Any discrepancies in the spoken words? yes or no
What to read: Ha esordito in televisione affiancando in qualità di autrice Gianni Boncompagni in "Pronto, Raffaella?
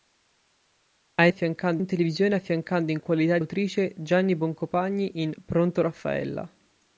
yes